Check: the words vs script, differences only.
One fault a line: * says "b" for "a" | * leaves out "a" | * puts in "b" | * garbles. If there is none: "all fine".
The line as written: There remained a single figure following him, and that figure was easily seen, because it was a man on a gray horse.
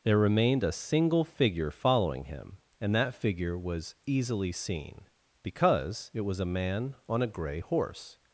all fine